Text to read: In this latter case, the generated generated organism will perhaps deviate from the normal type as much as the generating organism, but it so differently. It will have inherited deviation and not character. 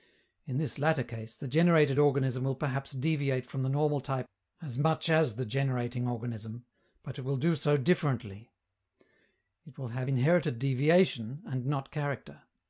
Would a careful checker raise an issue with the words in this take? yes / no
yes